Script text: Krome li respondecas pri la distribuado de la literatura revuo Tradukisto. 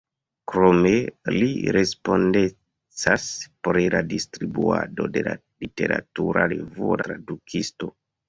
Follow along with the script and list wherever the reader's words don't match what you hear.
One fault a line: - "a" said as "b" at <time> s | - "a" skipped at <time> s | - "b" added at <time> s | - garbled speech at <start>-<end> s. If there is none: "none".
none